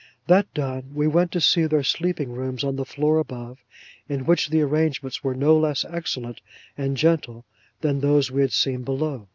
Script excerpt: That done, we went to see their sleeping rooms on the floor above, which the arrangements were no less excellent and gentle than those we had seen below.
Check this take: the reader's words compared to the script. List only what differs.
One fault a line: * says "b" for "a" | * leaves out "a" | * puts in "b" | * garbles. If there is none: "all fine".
* puts in "in"